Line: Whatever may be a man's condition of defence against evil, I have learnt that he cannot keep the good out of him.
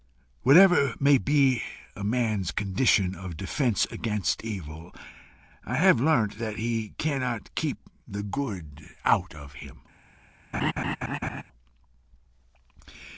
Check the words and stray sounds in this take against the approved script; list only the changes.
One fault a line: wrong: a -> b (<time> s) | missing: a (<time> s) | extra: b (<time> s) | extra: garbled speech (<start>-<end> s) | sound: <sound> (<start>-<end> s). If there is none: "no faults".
sound: laugh (10.5-11.4 s)